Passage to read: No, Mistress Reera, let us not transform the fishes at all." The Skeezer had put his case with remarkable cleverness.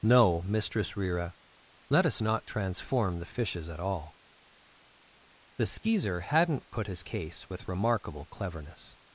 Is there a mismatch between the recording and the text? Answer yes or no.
yes